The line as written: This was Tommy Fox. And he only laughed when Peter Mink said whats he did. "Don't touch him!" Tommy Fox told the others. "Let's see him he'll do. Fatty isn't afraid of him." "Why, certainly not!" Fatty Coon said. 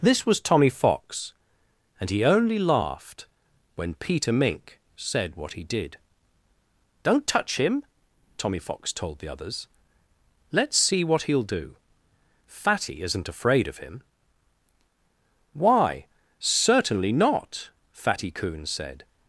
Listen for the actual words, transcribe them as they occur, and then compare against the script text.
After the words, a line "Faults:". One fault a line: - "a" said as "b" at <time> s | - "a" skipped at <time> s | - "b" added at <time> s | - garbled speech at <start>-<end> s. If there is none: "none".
This was Tommy Fox. And he only laughed when Peter Mink said what he did. "Don't touch him!" Tommy Fox told the others. "Let's see what he'll do. Fatty isn't afraid of him." "Why, certainly not!" Fatty Coon said.
Faults:
- "whats" said as "what" at 5.3 s
- "him" said as "what" at 11.0 s